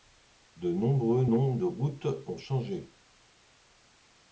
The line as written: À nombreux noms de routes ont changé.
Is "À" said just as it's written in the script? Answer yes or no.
no